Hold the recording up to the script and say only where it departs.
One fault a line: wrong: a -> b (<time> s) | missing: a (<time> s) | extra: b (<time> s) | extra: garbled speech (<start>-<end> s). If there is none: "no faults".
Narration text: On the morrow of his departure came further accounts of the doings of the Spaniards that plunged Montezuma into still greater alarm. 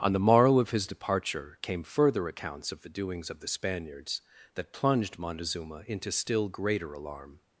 no faults